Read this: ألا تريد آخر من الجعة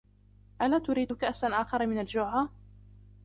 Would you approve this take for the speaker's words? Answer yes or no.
no